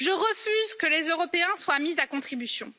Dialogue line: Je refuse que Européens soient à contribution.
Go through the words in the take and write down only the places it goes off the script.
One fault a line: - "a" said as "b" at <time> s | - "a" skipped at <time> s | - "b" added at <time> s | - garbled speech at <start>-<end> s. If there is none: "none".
- "les" added at 0.9 s
- "mis" added at 1.8 s